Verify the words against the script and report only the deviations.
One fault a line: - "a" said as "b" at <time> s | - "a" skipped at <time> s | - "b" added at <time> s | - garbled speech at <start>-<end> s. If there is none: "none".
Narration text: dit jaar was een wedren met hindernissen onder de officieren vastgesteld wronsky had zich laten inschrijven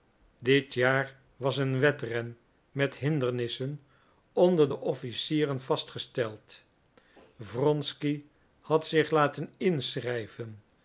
none